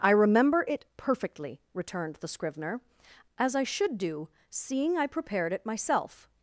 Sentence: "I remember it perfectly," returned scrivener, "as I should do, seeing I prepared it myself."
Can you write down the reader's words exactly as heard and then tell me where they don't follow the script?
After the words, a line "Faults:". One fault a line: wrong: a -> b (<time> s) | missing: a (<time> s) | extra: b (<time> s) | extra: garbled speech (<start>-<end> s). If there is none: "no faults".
"I remember it perfectly," returned the scrivener, "as I should do, seeing I prepared it myself."
Faults:
extra: the (2.1 s)